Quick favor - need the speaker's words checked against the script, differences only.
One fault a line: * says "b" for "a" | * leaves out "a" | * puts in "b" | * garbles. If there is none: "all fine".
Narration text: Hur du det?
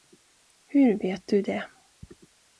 * puts in "vet"